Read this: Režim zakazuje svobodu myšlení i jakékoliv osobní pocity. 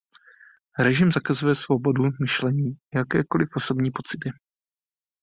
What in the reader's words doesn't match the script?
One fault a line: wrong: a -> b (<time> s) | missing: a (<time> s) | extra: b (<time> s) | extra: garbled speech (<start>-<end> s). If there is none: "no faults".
no faults